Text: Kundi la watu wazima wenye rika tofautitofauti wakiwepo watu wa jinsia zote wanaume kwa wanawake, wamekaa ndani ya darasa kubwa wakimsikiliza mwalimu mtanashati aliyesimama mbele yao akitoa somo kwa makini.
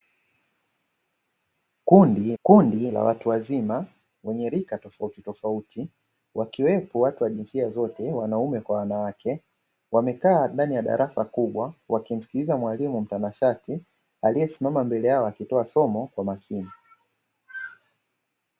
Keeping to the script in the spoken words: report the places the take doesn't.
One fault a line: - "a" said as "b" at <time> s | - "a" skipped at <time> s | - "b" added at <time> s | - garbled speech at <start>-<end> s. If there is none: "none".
- "kundi" added at 2.4 s